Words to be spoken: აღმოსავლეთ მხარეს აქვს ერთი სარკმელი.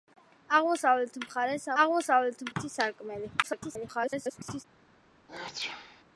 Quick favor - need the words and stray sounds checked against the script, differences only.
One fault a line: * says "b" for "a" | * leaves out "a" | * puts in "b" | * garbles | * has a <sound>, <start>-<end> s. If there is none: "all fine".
* says "აღმოსავლეთ" for "აქვს"
* garbles
* has a sneeze, 5.3-6.0 s